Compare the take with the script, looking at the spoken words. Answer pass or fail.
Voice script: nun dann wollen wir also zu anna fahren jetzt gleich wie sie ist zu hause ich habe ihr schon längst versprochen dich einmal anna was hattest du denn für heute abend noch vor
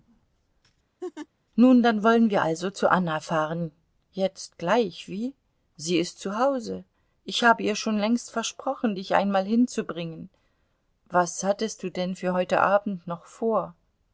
fail